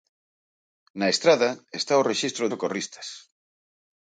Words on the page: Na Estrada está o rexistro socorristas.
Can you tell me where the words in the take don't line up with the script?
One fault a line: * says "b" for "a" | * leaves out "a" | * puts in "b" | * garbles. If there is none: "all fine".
all fine